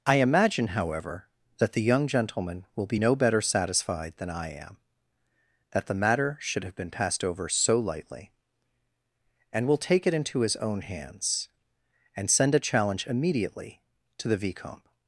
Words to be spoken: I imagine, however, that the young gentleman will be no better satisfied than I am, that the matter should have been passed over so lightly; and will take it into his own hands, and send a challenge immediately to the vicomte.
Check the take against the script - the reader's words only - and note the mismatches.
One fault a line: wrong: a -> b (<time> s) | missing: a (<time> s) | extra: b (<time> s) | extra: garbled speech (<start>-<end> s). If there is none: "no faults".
no faults